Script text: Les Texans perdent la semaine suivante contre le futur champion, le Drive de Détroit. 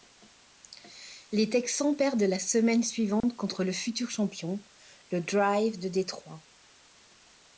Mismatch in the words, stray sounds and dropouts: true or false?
true